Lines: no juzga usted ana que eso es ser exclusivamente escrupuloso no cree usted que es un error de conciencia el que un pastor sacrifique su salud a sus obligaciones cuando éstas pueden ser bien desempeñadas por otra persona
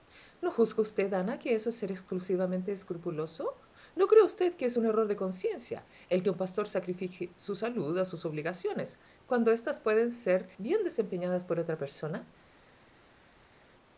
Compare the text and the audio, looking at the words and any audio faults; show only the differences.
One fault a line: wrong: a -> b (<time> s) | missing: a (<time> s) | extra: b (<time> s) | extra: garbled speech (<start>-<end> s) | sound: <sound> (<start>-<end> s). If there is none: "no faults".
no faults